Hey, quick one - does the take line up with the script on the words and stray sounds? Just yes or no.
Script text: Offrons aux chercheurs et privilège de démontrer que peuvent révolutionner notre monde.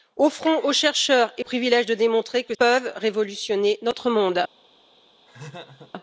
no